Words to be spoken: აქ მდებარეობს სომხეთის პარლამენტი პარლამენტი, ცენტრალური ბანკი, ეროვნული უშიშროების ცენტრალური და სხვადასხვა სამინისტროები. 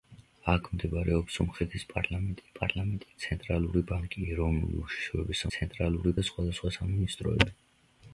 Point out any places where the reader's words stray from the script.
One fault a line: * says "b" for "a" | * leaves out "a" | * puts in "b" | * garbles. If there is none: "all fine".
all fine